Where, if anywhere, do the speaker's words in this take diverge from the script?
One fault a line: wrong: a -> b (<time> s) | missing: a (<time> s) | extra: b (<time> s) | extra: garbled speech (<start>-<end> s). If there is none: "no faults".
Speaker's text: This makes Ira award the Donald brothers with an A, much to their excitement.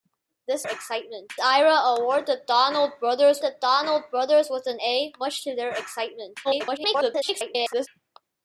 wrong: makes -> excitement (0.6 s)
extra: the Donald brothers (3.4 s)
extra: garbled speech (6.4-7.9 s)